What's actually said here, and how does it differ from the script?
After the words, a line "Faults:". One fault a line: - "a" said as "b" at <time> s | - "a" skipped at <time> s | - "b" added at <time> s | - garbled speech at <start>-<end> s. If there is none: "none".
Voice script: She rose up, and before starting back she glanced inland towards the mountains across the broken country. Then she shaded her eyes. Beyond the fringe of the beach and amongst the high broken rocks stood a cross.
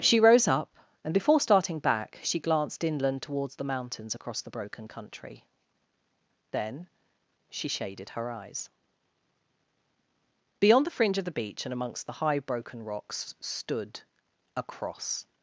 She rose up, and before starting back she glanced inland towards the mountains across the broken country. Then she shaded her eyes. Beyond the fringe of the beach and amongst the high broken rocks stood a cross.
Faults:
none